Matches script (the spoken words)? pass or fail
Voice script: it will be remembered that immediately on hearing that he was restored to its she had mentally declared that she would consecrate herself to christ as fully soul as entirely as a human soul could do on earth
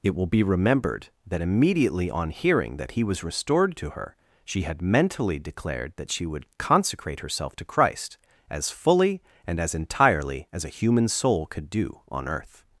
fail